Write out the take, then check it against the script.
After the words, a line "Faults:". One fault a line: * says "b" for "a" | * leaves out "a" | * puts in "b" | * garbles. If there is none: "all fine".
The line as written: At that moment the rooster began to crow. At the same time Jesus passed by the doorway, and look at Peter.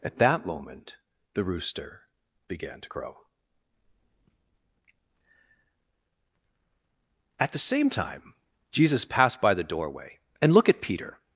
At that moment the rooster began to crow. At the same time Jesus passed by the doorway, and look at Peter.
Faults:
all fine